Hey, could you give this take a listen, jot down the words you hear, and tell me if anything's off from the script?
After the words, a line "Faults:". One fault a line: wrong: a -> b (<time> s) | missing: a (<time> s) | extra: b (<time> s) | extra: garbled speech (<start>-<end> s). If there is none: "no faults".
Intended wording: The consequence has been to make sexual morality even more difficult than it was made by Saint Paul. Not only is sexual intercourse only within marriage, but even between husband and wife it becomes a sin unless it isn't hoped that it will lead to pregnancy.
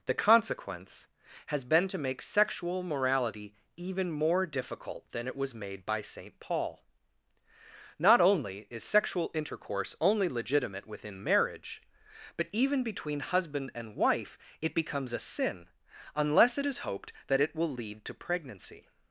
The consequence has been to make sexual morality even more difficult than it was made by Saint Paul. Not only is sexual intercourse only legitimate within marriage, but even between husband and wife it becomes a sin unless it is hoped that it will lead to pregnancy.
Faults:
extra: legitimate (10.3 s)
wrong: isn't -> is (16.6 s)